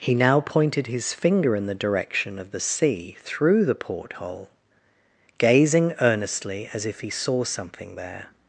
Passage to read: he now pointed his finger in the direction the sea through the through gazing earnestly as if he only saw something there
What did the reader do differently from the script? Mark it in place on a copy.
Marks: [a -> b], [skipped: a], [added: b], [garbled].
he now pointed his finger in the direction [added: of] the sea through the [through -> porthole] gazing earnestly as if he [skipped: only] saw something there